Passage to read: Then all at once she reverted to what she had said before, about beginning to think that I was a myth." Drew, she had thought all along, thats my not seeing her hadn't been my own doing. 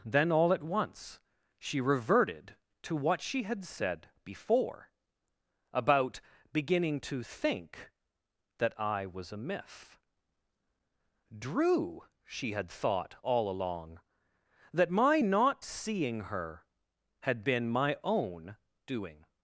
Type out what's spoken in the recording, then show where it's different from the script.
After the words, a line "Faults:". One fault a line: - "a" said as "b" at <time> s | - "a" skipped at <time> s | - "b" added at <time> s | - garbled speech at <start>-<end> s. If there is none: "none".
Then all at once she reverted to what she had said before, about beginning to think that I was a myth." Drew, she had thought all along, that my not seeing her had been my own doing.
Faults:
- "thats" said as "that" at 14.7 s
- "hadn't" said as "had" at 17.2 s